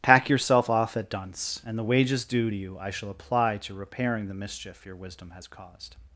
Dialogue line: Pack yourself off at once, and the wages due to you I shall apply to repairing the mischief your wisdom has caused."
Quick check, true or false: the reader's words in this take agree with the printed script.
false